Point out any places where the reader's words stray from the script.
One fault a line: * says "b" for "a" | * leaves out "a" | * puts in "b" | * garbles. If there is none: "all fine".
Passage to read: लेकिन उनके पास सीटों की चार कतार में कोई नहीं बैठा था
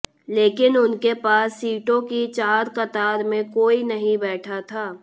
all fine